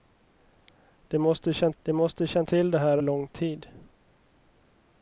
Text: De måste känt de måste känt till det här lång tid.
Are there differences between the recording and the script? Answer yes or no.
no